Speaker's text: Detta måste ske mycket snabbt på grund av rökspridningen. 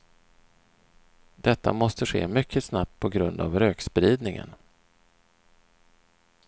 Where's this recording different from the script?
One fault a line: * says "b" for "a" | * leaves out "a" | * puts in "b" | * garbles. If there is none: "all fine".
all fine